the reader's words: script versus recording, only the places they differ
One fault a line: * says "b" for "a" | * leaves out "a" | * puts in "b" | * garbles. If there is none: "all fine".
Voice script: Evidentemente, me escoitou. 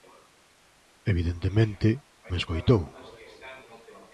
all fine